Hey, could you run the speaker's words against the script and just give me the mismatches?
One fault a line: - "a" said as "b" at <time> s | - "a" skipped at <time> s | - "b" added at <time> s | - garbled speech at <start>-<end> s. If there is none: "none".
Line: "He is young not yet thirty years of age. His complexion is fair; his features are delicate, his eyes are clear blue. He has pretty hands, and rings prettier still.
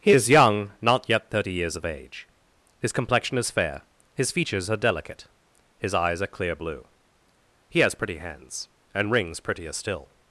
none